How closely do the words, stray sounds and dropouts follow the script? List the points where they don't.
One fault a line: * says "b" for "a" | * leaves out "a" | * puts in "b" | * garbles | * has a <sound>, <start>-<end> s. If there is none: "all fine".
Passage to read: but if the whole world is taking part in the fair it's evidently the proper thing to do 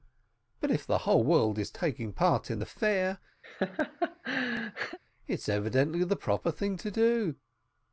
* has a laugh, 3.4-5.0 s